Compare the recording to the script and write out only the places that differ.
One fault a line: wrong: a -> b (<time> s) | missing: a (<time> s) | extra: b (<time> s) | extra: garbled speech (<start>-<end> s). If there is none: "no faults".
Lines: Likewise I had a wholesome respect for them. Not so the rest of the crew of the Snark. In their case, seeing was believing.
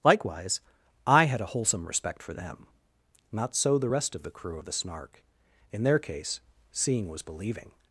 no faults